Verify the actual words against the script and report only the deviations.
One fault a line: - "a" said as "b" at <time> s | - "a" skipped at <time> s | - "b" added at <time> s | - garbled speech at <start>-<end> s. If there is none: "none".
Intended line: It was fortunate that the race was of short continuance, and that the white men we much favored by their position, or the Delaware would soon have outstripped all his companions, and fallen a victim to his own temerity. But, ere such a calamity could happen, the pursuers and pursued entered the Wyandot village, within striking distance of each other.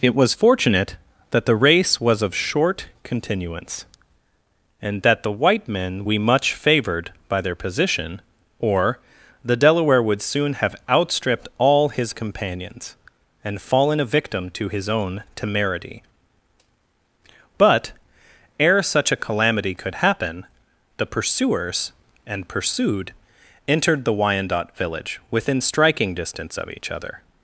none